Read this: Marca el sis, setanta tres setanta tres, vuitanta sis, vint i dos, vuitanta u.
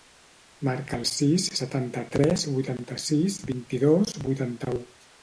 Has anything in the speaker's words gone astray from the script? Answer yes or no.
yes